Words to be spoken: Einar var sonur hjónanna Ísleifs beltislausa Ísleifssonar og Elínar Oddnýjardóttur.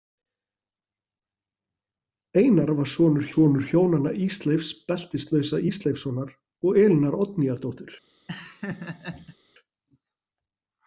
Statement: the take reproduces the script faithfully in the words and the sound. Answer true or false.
false